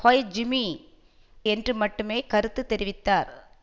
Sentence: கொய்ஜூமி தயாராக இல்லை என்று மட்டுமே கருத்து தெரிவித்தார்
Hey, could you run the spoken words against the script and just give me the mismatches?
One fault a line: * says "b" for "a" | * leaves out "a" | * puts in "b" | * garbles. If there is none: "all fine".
* leaves out "தயாராக இல்லை"